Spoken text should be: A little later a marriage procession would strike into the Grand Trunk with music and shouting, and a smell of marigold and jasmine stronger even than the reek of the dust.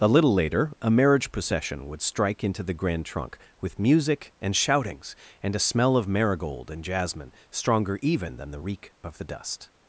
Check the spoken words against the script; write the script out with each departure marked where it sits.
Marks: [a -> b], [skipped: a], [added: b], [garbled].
A little later a marriage procession would strike into the Grand Trunk with music and [shouting, -> shoutings] and a smell of marigold and jasmine stronger even than the reek of the dust.